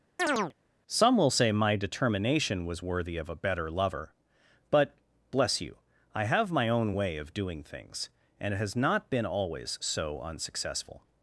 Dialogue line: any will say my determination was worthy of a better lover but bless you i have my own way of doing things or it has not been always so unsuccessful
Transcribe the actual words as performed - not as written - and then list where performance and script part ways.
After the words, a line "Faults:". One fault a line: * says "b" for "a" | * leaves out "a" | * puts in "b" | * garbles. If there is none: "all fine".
some will say my determination was worthy of a better lover but bless you i have my own way of doing things and it has not been always so unsuccessful
Faults:
* says "some" for "any"
* says "and" for "or"